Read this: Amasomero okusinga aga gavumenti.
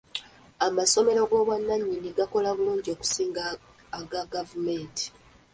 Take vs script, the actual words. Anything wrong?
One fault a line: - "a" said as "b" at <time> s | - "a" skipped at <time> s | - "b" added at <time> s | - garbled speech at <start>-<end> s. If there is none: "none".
- "g'obwannannyini gakola bulungi" added at 1.3 s